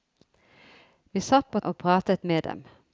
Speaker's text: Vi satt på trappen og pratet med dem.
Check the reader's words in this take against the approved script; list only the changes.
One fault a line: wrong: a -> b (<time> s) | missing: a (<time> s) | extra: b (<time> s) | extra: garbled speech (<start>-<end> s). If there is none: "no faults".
missing: trappen (1.6 s)